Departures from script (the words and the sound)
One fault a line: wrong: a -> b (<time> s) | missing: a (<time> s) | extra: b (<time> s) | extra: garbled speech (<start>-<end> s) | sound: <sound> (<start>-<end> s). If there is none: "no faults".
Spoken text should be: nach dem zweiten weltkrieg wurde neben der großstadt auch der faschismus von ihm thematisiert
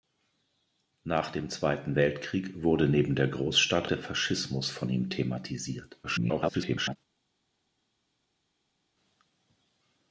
missing: auch (3.9 s)
extra: garbled speech (6.0-7.0 s)